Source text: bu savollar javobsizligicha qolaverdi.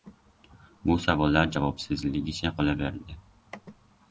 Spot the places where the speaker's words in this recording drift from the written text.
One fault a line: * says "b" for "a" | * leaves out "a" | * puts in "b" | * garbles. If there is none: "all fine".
all fine